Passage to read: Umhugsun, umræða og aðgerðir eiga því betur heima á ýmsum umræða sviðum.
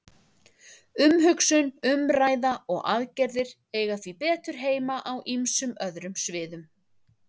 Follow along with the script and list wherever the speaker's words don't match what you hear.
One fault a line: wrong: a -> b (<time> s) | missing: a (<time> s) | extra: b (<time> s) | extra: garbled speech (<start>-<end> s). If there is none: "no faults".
wrong: umræða -> öðrum (5.9 s)